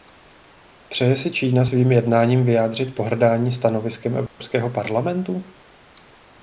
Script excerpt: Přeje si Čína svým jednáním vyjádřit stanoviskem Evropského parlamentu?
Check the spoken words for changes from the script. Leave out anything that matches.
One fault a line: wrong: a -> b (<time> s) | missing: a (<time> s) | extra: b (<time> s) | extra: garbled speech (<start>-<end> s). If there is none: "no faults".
extra: pohrdání (2.9 s)